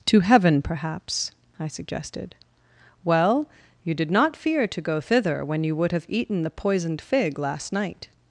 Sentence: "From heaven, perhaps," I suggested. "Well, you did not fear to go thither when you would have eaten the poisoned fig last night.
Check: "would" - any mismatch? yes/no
no